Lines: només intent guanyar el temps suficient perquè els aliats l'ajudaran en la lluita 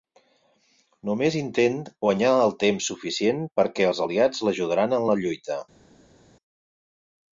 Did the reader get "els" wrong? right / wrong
right